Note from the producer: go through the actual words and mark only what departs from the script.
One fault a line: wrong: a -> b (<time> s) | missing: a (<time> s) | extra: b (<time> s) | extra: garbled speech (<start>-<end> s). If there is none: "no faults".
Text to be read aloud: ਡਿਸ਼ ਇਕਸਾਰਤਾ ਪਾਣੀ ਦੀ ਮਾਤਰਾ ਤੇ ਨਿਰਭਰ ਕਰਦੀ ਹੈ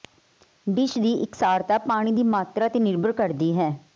extra: ਦੀ (1.0 s)